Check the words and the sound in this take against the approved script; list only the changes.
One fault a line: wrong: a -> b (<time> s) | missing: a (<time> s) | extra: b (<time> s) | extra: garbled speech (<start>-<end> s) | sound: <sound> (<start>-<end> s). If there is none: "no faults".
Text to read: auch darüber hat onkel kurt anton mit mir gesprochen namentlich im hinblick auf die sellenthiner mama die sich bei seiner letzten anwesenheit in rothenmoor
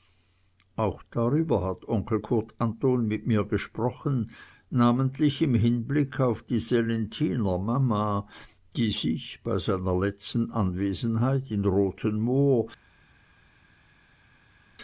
no faults